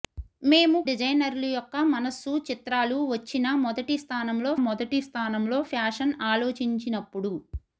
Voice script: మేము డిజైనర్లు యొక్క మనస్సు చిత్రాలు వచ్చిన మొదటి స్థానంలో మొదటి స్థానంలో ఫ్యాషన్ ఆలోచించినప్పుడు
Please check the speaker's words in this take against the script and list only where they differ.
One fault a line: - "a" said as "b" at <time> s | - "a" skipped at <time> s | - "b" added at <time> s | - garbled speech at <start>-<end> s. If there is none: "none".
none